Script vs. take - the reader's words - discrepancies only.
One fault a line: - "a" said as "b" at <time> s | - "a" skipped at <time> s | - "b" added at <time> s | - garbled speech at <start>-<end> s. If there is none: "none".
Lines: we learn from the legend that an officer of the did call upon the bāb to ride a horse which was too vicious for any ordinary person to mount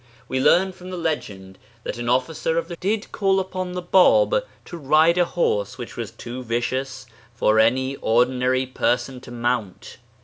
none